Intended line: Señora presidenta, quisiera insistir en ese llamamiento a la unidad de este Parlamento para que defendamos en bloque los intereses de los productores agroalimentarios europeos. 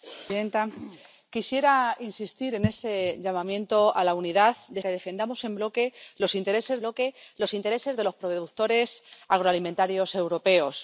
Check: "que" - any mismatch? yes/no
yes